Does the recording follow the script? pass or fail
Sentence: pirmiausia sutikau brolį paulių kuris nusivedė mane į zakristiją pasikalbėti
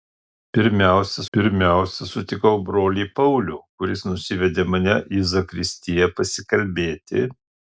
fail